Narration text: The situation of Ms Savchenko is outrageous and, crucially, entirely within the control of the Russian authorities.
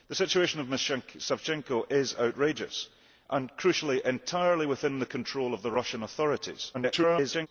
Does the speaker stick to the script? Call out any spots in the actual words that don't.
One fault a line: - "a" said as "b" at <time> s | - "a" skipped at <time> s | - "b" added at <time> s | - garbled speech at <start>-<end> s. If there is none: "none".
- garbled speech at 6.7-7.5 s